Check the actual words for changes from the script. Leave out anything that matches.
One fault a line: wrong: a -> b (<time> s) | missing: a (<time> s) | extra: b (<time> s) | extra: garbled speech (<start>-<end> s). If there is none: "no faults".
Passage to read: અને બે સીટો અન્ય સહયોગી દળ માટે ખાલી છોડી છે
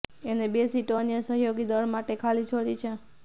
no faults